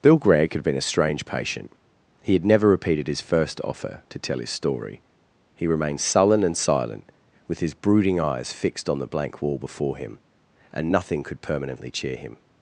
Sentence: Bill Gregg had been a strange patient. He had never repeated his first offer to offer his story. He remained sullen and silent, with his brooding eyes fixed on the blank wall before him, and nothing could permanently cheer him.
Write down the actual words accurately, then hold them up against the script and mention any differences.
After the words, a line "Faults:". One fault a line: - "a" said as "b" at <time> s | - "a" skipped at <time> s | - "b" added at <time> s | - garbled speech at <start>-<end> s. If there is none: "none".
Bill Gregg had been a strange patient. He had never repeated his first offer to tell his story. He remained sullen and silent, with his brooding eyes fixed on the blank wall before him, and nothing could permanently cheer him.
Faults:
- "offer" said as "tell" at 4.2 s